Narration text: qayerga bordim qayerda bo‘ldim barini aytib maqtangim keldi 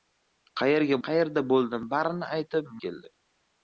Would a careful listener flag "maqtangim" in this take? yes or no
yes